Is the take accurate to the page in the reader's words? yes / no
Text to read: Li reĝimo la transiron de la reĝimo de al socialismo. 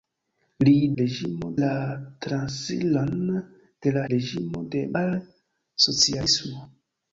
yes